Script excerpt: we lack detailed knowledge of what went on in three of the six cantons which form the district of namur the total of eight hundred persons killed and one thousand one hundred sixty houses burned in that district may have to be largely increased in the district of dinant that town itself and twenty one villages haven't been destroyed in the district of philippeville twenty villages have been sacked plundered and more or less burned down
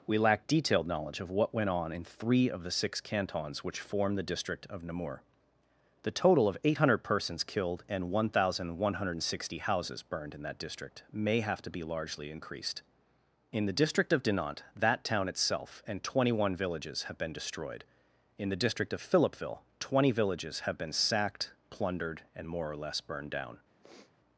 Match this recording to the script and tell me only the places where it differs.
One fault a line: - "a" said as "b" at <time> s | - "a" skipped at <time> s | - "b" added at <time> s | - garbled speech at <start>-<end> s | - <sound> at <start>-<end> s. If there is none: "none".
- "haven't" said as "have" at 17.0 s
- sniff at 23.8-24.1 s